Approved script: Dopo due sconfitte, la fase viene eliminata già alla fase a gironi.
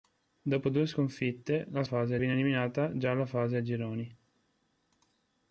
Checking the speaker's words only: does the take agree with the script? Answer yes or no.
yes